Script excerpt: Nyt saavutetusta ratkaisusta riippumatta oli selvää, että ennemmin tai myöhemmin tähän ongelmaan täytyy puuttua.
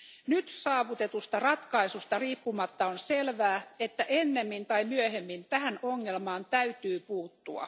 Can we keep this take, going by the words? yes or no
no